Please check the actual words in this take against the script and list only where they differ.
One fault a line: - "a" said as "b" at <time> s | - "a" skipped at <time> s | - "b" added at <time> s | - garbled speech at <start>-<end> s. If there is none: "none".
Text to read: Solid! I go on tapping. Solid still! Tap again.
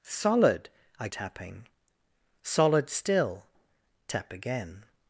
- "go on" skipped at 1.1 s